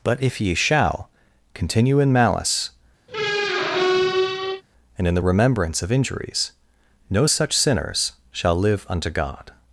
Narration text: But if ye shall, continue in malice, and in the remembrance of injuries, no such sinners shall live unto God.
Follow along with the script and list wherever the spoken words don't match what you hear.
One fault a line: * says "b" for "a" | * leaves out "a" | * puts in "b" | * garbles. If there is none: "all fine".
all fine